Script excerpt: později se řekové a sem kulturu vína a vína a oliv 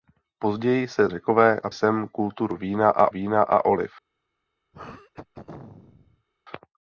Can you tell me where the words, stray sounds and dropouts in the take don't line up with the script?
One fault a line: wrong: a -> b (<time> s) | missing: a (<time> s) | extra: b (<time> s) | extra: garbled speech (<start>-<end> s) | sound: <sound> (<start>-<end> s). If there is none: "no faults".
sound: throat clearing (4.7-6.3 s)